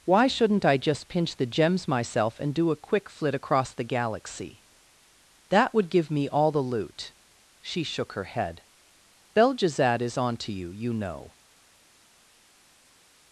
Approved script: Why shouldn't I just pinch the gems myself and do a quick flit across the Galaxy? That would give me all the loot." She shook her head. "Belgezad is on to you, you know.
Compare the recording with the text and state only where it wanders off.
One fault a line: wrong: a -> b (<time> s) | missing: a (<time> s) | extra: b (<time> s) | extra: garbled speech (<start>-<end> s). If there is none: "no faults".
no faults